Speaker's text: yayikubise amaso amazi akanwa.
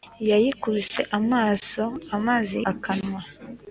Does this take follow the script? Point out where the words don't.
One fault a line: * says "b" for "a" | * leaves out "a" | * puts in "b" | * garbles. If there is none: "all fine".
all fine